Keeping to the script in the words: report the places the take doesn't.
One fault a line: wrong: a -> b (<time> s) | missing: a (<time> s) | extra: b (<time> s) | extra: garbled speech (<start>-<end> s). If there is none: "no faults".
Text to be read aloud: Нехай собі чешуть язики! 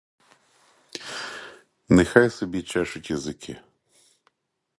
no faults